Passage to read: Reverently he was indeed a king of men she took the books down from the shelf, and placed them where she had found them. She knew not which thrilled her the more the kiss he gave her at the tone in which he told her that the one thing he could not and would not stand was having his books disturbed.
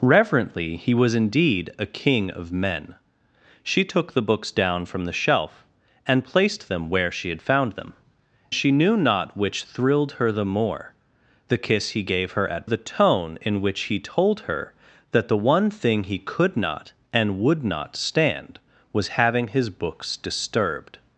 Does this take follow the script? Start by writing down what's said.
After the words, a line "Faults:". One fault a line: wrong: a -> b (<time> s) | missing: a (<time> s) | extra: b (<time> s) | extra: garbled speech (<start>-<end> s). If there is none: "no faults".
Reverently he was indeed a king of men she took the books down from the shelf, and placed them where she had found them. She knew not which thrilled her the more the kiss he gave her at the tone in which he told her that the one thing he could not and would not stand was having his books disturbed.
Faults:
no faults